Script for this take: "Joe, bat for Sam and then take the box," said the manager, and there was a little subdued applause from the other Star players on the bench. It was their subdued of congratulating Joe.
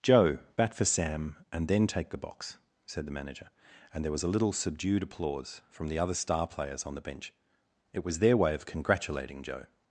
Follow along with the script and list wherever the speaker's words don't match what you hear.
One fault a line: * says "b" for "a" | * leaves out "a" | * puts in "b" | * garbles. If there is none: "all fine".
* says "way" for "subdued"